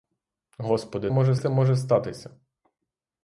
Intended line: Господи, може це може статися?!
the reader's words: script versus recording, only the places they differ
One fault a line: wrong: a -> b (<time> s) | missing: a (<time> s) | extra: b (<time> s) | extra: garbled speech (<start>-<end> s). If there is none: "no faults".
no faults